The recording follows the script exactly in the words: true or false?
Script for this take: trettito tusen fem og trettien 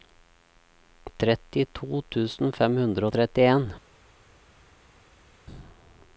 false